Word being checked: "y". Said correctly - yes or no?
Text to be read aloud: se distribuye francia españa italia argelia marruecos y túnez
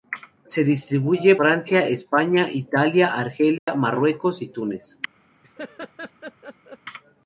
yes